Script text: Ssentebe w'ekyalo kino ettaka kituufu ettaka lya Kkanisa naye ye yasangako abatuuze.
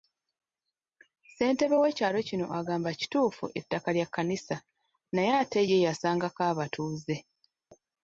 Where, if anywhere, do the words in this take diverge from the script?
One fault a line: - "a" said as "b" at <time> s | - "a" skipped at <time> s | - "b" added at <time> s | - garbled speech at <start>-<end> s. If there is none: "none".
- "ettaka" said as "agamba" at 2.6 s
- "ate" added at 5.4 s